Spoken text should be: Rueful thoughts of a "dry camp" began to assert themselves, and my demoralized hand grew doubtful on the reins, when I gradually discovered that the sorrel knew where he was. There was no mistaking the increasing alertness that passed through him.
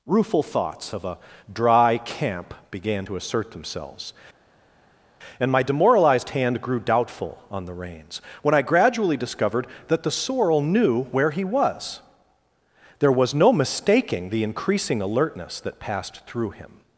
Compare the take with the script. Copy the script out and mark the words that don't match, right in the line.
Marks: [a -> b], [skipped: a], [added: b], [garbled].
Rueful thoughts of a "dry camp" began to assert themselves, and my demoralized hand grew doubtful on the reins, when I gradually discovered that the sorrel knew where he was. There was no mistaking the increasing alertness that passed through him.